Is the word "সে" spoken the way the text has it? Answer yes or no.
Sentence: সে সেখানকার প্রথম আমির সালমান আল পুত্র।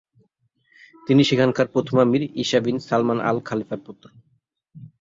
no